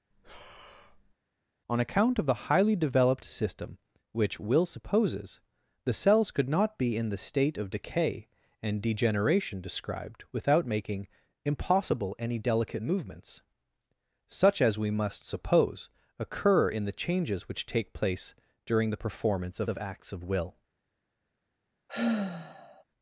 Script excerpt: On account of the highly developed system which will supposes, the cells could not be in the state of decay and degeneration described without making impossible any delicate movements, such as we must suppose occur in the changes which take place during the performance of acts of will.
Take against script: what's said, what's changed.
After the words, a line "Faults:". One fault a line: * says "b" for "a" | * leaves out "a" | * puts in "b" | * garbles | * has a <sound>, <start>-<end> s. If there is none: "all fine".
On account of the highly developed system which will supposes, the cells could not be in the state of decay and degeneration described without making impossible any delicate movements, such as we must suppose occur in the changes which take place during the performance of of acts of will.
Faults:
* has a breath, 0.1-1.2 s
* puts in "of"
* has a sigh, 21.9-22.8 s